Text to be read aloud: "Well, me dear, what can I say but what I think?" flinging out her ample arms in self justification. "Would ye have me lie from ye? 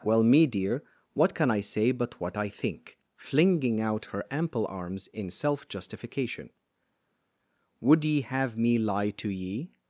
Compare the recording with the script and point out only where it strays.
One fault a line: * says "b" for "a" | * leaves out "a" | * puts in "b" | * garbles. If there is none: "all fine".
* says "to" for "from"